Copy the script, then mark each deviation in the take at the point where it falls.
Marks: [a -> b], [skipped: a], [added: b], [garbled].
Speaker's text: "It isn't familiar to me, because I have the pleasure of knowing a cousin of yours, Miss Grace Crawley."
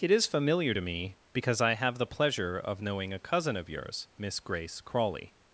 "It [isn't -> is] familiar to me, because I have the pleasure of knowing a cousin of yours, Miss Grace Crawley."